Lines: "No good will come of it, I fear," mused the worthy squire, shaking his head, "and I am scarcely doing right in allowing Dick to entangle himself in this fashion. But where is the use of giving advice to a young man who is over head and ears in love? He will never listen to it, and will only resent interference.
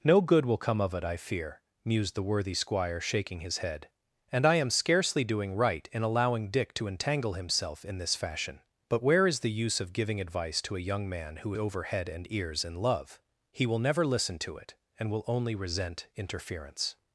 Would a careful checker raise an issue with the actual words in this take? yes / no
yes